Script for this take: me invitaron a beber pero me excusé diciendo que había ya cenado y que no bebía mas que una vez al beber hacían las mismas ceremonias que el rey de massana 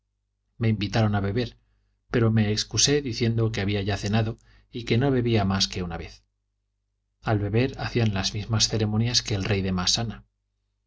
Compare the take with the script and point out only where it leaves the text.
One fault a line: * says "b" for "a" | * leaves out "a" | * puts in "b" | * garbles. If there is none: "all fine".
all fine